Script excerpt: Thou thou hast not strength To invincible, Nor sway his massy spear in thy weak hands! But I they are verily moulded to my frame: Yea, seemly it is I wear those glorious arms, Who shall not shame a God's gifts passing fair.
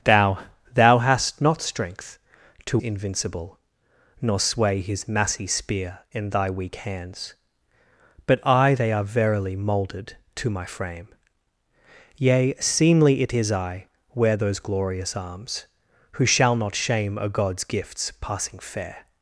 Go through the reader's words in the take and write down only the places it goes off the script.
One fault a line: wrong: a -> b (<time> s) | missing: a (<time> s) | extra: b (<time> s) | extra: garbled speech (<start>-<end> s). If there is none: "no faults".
no faults